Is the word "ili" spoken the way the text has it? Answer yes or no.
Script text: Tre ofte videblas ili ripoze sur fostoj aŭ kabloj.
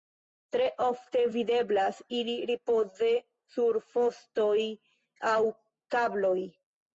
yes